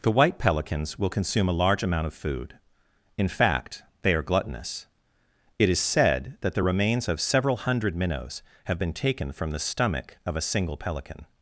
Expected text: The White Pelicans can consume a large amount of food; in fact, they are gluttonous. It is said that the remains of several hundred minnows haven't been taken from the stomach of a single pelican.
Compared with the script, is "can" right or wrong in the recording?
wrong